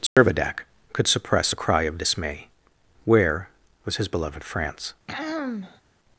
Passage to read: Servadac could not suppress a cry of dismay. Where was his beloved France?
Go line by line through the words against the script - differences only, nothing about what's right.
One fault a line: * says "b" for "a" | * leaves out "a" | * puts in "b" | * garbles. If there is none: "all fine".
* leaves out "not"